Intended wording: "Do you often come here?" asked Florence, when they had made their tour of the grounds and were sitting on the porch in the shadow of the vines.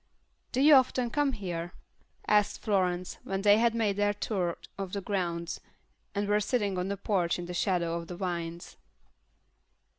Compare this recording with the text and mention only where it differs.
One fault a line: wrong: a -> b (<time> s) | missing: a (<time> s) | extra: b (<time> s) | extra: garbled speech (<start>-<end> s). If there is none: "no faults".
no faults